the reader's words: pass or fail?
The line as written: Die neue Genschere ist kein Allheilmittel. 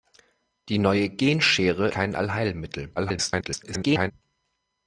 fail